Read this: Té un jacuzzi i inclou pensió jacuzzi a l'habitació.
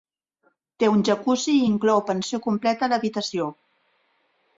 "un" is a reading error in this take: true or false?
false